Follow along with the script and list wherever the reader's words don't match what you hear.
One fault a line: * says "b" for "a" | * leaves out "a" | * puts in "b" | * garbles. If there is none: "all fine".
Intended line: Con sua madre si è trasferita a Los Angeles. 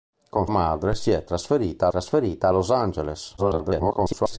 * leaves out "sua"
* puts in "trasferita"
* garbles